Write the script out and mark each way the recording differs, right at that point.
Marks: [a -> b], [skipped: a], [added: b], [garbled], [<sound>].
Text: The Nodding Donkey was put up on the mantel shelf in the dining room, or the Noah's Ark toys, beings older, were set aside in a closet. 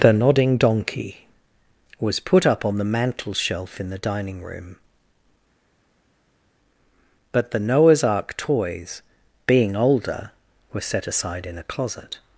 The Nodding Donkey was put up on the mantel shelf in the dining room, [or -> but] the Noah's Ark toys, [beings -> being] older, were set aside in a closet.